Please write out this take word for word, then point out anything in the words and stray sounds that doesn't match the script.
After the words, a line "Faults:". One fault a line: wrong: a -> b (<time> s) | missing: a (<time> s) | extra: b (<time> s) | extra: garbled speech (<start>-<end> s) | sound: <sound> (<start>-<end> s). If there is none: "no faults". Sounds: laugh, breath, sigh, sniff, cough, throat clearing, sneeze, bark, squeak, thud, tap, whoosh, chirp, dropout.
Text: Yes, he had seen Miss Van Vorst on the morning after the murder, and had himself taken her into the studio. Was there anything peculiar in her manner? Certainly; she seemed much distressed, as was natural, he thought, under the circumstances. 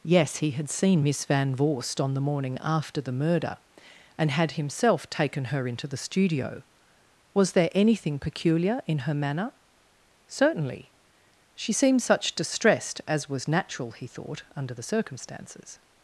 Yes, he had seen Miss Van Vorst on the morning after the murder, and had himself taken her into the studio. Was there anything peculiar in her manner? Certainly; she seemed such distressed, as was natural, he thought, under the circumstances.
Faults:
wrong: much -> such (12.0 s)